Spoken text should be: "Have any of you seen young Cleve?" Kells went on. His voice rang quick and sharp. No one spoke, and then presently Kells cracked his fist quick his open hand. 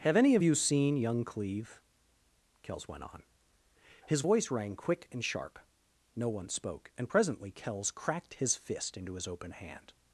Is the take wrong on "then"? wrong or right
wrong